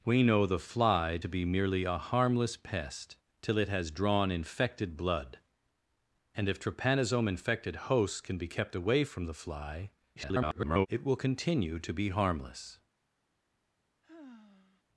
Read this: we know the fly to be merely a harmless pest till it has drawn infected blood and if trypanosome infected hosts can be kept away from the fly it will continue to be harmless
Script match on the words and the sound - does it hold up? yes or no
no